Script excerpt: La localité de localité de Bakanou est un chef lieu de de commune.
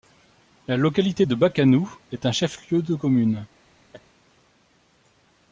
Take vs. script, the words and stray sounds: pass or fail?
fail